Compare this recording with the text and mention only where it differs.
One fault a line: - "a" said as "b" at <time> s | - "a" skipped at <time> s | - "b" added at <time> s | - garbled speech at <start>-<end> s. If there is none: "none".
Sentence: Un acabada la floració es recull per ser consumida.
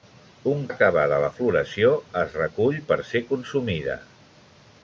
none